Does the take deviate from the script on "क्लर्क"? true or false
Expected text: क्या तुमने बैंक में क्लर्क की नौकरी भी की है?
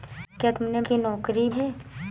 true